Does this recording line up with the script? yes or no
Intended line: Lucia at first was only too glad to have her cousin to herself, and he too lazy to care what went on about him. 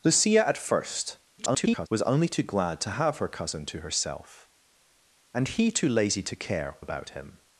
no